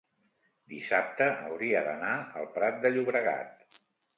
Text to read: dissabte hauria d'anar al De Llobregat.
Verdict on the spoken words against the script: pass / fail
fail